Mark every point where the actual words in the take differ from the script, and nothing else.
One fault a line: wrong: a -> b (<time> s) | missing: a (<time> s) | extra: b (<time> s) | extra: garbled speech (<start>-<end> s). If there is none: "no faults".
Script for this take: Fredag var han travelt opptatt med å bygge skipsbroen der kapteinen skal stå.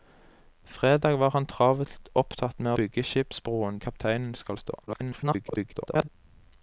missing: å (2.7 s)
missing: der (3.8 s)
extra: garbled speech (4.9-6.1 s)